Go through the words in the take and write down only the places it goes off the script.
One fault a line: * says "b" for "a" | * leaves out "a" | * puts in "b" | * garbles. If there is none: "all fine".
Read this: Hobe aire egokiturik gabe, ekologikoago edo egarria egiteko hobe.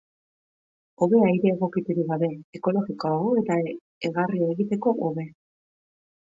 * says "eta" for "edo"